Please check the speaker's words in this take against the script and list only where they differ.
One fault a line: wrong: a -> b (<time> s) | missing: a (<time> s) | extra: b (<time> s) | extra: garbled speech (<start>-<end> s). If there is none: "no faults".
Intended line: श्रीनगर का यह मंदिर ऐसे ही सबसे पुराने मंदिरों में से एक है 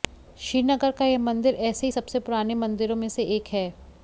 no faults